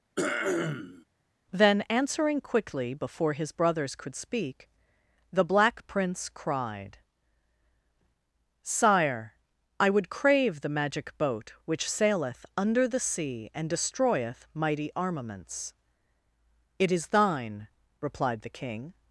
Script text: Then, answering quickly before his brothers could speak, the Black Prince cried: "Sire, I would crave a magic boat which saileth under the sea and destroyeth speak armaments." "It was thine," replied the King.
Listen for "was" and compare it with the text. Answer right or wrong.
wrong